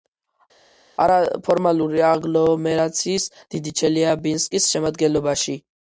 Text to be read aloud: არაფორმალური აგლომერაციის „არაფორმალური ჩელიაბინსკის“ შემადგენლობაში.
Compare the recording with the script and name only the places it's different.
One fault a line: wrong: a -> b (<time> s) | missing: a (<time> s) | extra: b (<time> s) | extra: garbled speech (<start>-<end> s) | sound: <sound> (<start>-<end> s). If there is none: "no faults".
wrong: არაფორმალური -> დიდი (3.6 s)